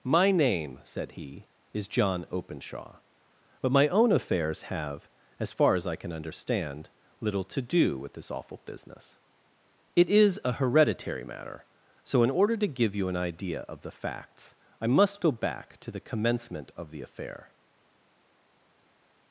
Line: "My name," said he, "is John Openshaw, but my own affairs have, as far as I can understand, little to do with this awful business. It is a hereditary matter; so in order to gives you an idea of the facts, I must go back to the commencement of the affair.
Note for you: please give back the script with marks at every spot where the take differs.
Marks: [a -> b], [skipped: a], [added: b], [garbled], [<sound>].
"My name," said he, "is John Openshaw, but my own affairs have, as far as I can understand, little to do with this awful business. It is a hereditary matter; so in order to [gives -> give] you an idea of the facts, I must go back to the commencement of the affair.